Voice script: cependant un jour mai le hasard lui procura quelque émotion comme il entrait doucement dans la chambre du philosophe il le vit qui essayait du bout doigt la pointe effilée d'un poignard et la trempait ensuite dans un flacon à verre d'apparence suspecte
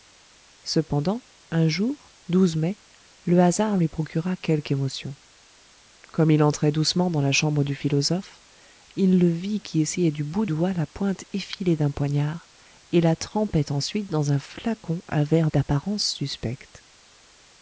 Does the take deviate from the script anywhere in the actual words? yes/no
no